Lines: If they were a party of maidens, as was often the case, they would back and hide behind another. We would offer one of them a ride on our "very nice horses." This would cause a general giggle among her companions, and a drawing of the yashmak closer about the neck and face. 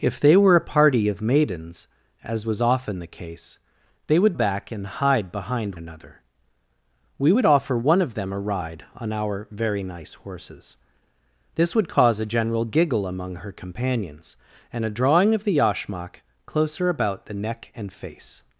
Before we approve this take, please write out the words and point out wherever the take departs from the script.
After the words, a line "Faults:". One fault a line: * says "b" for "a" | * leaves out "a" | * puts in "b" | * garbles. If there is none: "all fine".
If they were a party of maidens, as was often the case, they would back and hide behind another. We would offer one of them a ride on our "very nice horses." This would cause a general giggle among her companions, and a drawing of the yashmak closer about the neck and face.
Faults:
all fine